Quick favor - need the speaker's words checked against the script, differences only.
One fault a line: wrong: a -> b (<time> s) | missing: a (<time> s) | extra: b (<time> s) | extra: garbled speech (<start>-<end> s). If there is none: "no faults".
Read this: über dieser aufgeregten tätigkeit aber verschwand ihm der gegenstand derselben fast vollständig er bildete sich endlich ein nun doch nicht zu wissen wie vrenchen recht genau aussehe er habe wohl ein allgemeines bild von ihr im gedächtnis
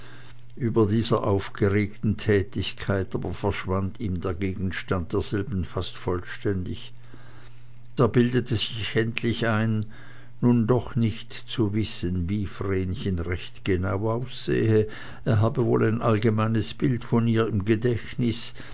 no faults